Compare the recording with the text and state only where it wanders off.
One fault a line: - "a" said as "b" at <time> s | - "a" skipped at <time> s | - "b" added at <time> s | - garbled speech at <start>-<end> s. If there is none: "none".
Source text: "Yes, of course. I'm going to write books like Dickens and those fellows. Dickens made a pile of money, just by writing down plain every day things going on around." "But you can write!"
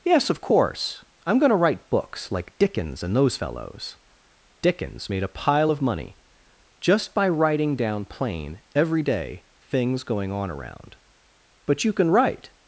none